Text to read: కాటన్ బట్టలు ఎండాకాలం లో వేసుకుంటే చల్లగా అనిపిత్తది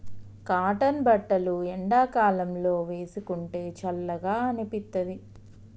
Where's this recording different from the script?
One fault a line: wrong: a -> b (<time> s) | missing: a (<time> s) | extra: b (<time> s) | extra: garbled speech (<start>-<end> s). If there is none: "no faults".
no faults